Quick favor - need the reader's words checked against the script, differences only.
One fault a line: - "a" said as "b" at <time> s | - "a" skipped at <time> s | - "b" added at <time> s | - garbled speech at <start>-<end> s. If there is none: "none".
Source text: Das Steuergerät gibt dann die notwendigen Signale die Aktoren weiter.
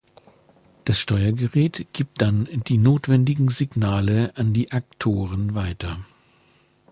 - "an" added at 4.3 s